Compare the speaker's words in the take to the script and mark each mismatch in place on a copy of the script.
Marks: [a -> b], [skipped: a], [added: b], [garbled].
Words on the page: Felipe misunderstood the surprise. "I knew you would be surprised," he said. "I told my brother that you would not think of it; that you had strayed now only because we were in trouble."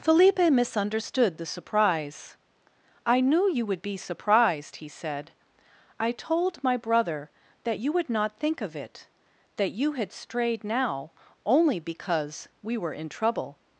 Felipe misunderstood the surprise. "I knew you would be surprised," he said. "I told my brother that you would not think of it; that you had strayed now only because we were in trouble."